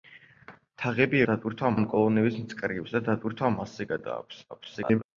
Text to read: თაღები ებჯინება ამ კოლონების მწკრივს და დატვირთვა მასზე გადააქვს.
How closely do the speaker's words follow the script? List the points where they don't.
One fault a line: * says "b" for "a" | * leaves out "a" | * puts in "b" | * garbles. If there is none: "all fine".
* says "დატვირთვა" for "ებჯინება"
* garbles